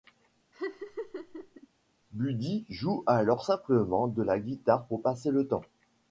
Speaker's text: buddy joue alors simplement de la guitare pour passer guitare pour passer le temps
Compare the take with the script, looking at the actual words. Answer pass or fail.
fail